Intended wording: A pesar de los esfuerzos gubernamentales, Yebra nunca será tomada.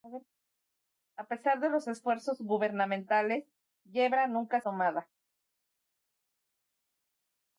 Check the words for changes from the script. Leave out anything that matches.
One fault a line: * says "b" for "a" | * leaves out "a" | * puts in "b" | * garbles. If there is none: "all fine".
* leaves out "será"